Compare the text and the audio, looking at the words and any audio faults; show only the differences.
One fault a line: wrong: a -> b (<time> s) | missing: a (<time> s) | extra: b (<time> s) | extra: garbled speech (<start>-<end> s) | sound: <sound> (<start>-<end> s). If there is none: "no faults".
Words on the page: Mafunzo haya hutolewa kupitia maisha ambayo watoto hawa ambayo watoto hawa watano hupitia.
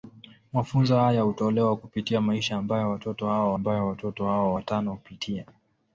no faults